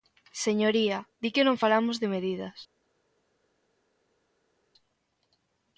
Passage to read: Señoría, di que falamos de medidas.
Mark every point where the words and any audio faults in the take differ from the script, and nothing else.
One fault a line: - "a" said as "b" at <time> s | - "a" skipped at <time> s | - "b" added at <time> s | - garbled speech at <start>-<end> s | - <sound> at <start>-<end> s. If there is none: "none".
- "non" added at 1.5 s